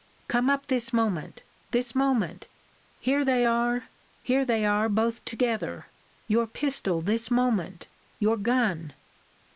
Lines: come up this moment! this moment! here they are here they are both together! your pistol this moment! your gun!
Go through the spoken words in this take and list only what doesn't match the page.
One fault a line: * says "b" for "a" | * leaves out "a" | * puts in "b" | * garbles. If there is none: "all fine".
all fine